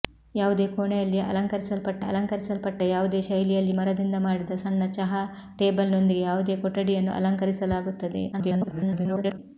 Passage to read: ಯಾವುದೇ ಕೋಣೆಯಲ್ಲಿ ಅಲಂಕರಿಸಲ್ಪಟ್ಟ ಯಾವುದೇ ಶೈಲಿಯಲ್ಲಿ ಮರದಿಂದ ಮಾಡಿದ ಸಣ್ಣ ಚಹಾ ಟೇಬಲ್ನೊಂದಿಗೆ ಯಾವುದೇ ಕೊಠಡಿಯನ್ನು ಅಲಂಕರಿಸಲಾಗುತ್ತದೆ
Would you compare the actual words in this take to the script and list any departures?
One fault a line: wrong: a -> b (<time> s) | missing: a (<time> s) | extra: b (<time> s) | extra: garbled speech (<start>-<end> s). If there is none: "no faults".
extra: ಅಲಂಕರಿಸಲ್ಪಟ್ಟ (2.0 s)
extra: garbled speech (8.3-9.4 s)